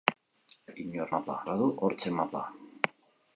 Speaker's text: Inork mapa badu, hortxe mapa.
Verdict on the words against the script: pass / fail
pass